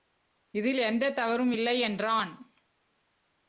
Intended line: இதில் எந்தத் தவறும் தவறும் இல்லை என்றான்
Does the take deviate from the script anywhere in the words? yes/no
yes